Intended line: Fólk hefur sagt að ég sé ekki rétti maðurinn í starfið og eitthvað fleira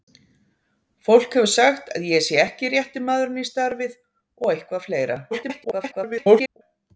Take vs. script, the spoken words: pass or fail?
fail